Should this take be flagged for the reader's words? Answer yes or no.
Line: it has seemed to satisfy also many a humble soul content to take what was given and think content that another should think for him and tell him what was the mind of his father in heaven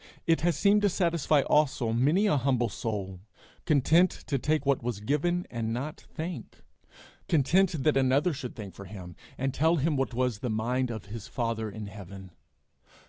yes